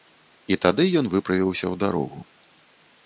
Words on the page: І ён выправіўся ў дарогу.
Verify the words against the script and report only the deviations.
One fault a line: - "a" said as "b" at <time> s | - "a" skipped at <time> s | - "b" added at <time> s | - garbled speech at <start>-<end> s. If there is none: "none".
- "тады" added at 0.6 s